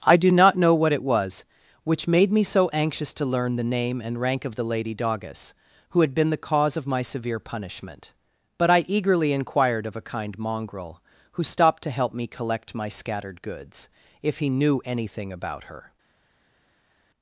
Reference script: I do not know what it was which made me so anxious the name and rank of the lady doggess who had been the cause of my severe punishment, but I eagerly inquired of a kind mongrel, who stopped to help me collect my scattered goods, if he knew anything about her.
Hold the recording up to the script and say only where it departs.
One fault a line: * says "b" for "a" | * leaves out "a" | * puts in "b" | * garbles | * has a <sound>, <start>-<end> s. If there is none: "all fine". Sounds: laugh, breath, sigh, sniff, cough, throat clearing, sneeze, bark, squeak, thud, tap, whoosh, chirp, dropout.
* puts in "to learn"